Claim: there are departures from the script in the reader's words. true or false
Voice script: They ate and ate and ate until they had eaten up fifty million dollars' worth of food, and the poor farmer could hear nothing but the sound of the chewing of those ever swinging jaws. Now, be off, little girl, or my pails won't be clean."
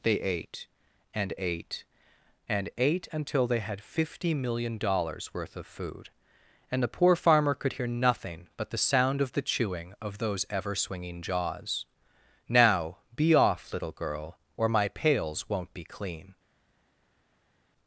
true